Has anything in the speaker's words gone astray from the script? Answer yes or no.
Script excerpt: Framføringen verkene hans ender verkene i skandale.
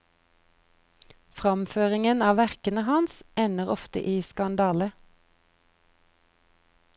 yes